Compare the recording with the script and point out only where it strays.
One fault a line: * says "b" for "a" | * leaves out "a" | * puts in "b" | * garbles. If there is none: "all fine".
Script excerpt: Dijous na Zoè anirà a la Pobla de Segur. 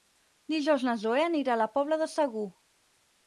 all fine